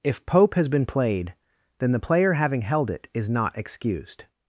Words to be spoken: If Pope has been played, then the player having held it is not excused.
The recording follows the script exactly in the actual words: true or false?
true